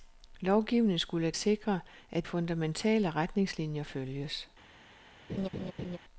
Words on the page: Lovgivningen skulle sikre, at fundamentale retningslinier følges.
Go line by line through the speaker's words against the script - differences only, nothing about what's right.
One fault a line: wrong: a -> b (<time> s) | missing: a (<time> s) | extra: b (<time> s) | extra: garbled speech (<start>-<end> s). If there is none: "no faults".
no faults